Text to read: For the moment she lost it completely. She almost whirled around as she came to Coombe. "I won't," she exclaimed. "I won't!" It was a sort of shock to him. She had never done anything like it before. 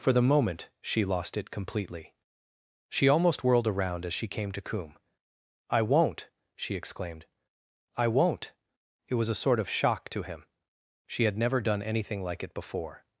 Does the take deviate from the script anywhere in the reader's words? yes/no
no